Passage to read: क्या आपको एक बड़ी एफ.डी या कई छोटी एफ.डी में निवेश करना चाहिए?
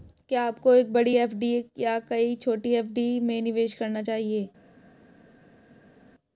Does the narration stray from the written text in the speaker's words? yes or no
no